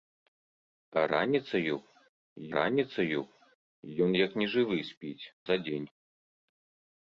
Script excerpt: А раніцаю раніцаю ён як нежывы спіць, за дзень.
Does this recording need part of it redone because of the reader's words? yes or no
no